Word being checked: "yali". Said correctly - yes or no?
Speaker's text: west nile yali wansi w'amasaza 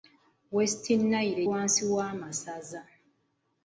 no